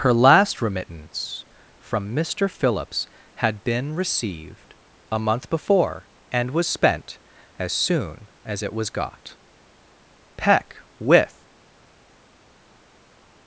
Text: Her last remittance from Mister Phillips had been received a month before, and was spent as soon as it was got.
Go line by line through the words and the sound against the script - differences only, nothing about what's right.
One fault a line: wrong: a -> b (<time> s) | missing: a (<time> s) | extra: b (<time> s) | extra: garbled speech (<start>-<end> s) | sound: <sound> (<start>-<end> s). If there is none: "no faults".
extra: Peck with (10.4 s)